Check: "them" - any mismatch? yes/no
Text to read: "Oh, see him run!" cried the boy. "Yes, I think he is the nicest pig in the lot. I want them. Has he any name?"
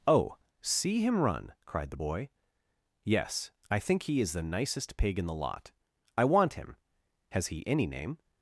yes